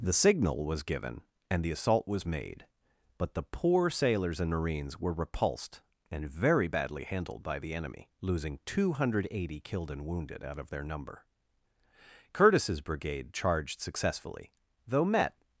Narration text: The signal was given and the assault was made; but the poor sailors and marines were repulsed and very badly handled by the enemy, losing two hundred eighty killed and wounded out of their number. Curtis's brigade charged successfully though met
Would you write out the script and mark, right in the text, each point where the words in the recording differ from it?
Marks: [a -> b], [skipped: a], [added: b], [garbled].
The signal was given and the assault was made; but the poor sailors and marines were repulsed and very badly handled by the enemy, losing two hundred eighty killed and wounded out of their number. Curtis's brigade charged successfully though met